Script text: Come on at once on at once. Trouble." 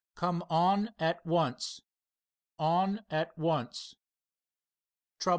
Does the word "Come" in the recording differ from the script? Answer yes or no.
no